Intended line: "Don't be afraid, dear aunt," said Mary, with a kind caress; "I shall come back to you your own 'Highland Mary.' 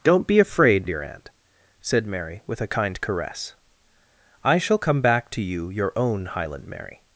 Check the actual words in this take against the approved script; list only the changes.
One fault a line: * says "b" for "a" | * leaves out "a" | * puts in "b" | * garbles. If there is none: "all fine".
all fine